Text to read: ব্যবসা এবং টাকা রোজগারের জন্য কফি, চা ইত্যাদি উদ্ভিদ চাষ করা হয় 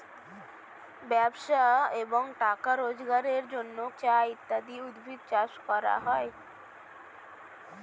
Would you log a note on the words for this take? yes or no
yes